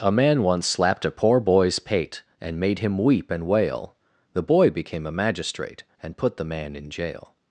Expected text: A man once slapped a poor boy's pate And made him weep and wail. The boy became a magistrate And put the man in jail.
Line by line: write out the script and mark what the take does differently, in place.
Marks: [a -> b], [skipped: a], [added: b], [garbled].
A man once slapped a poor boy's pate And made him weep and wail. The boy became a magistrate And put the man in jail.